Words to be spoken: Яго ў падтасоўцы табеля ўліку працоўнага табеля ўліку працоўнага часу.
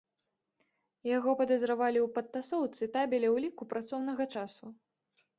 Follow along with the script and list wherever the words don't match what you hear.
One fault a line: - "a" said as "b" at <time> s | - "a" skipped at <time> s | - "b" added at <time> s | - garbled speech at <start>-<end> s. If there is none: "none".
- "падазравалі" added at 1.4 s
- "табеля ўліку працоўнага" skipped at 4.3 s